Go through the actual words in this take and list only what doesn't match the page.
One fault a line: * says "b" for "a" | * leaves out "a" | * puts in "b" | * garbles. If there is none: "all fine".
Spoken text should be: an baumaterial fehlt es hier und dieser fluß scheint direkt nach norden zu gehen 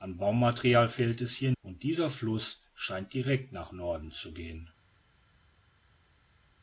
all fine